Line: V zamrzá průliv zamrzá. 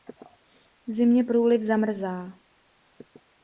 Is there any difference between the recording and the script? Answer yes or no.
yes